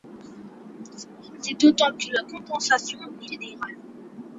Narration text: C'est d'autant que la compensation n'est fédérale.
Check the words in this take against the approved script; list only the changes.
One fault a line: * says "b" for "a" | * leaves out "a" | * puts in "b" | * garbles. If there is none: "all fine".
all fine